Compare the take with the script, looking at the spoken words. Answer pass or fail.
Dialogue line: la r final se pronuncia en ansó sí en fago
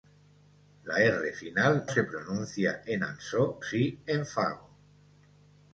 pass